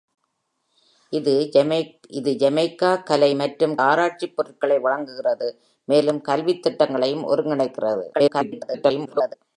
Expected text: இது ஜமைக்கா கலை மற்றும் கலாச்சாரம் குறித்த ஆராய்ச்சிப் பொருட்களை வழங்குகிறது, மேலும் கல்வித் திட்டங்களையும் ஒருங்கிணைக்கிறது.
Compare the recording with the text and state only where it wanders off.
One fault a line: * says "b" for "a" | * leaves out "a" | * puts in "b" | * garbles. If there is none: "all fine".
* leaves out "கலாச்சாரம் குறித்த"
* garbles